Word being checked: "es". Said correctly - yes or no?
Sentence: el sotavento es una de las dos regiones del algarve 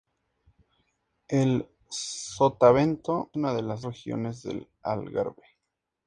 no